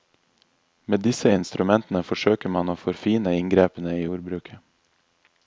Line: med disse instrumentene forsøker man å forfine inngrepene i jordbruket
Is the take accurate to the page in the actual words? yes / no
yes